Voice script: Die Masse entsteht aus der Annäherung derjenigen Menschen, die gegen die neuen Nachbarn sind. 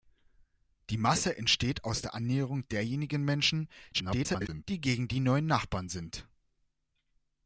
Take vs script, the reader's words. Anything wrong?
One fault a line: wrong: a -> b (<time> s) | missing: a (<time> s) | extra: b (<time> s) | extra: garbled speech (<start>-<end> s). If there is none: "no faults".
extra: garbled speech (3.9-4.6 s)